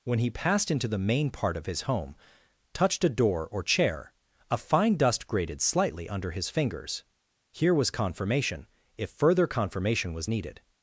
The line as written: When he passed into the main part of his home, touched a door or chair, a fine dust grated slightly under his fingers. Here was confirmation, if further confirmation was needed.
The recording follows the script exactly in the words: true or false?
true